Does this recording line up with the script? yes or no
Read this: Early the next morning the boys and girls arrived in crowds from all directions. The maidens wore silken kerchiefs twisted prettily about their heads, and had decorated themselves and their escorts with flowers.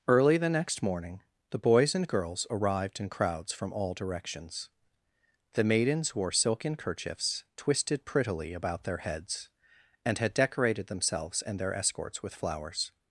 yes